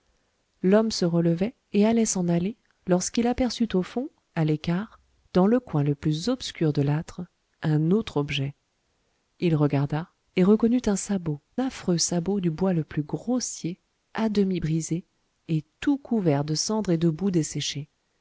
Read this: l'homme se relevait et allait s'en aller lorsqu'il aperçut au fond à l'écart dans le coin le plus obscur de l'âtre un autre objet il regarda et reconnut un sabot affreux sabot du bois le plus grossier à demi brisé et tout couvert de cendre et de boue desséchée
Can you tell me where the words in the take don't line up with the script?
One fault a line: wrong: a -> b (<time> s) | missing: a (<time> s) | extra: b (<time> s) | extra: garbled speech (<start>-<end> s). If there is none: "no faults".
no faults